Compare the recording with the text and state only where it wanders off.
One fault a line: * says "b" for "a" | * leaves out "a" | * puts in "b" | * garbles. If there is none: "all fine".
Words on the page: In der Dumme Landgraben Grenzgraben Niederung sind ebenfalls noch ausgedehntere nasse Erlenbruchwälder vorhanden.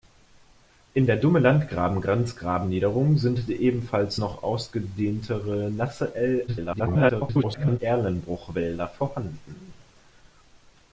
* garbles